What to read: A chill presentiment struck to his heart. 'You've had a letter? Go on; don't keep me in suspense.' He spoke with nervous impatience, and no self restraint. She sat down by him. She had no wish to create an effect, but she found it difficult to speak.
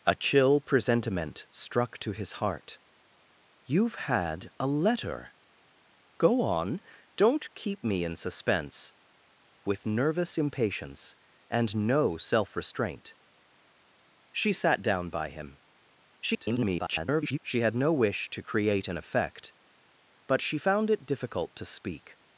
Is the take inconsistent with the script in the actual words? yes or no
yes